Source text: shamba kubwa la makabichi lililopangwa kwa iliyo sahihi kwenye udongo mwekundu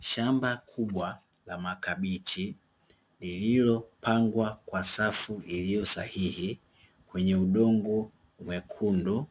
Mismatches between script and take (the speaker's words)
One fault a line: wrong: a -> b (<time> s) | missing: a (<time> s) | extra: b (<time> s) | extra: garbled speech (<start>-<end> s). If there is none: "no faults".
extra: safu (4.8 s)